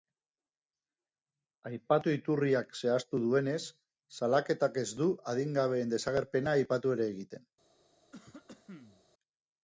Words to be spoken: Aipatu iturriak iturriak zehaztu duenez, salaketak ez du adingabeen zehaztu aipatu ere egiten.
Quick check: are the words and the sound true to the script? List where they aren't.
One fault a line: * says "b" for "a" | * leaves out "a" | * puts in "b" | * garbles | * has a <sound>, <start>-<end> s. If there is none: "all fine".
* leaves out "iturriak"
* says "desagerpena" for "zehaztu"
* has a cough, 8.1-9.0 s